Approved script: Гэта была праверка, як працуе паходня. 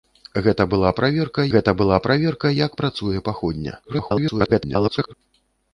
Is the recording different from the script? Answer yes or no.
yes